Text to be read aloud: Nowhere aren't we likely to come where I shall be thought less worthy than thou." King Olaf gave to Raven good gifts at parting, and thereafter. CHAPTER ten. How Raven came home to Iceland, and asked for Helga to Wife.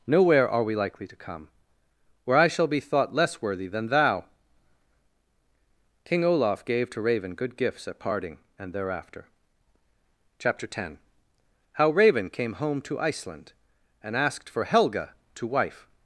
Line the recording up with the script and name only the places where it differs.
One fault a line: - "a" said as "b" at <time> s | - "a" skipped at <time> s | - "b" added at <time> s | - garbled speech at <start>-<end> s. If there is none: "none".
- "aren't" said as "are" at 0.5 s